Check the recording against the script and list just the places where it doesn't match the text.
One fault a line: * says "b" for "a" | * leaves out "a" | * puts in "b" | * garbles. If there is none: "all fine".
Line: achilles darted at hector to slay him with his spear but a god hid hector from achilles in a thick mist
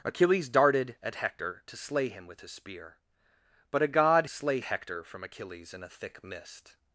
* says "slay" for "hid"